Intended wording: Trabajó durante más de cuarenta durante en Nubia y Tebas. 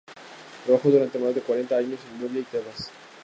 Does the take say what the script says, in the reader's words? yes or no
no